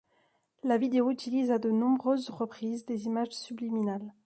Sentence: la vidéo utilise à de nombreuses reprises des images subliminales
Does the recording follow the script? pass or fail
pass